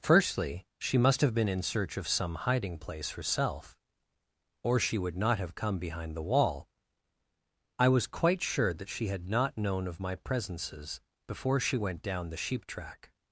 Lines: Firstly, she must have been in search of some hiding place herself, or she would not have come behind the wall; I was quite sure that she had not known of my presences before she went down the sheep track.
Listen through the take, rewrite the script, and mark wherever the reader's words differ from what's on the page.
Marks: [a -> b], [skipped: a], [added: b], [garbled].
Firstly, she must have been in search of some hiding place herself, or she would not have come behind the wall; I was quite sure that she had not known of my presences before she went down the sheep track.